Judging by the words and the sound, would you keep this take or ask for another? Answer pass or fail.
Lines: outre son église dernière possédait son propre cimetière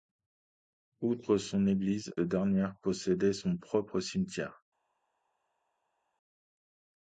pass